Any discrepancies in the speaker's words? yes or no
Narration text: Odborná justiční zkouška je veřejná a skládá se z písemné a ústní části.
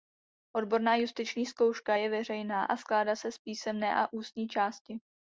no